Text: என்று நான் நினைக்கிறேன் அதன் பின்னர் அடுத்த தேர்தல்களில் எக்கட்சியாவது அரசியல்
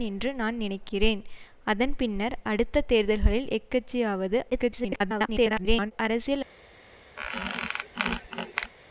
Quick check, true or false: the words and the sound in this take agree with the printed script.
false